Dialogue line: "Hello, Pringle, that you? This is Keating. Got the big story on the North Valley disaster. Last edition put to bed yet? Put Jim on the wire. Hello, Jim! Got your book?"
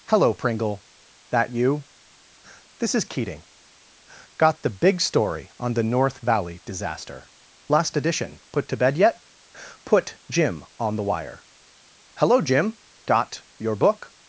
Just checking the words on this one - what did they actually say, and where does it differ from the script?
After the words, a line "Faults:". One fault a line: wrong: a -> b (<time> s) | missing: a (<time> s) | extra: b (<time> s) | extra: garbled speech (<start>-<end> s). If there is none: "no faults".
"Hello, Pringle, that you? This is Keating. Got the big story on the North Valley disaster. Last edition put to bed yet? Put Jim on the wire. Hello, Jim! Got your book?"
Faults:
no faults